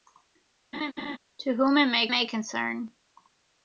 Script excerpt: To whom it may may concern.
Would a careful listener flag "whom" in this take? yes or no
no